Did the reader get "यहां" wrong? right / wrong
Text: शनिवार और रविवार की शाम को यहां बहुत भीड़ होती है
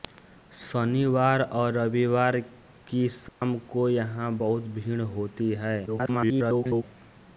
right